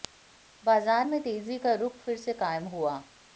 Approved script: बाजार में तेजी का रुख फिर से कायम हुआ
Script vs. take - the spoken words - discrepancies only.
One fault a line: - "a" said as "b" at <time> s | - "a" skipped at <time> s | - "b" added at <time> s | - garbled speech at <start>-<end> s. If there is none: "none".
none